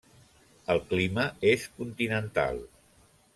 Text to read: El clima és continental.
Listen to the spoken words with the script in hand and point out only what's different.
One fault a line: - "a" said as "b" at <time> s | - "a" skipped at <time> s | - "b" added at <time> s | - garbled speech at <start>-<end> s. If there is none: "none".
none